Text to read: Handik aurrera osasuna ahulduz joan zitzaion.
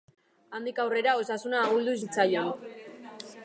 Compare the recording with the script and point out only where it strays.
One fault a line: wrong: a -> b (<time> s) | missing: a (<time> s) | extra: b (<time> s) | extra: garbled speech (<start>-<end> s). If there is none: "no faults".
missing: joan (2.0 s)